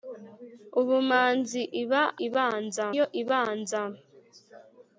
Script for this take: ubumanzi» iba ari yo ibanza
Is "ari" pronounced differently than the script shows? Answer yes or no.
yes